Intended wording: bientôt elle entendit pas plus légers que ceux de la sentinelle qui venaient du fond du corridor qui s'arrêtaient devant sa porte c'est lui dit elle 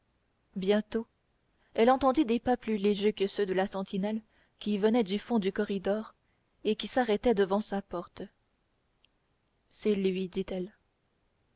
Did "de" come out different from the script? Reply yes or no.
no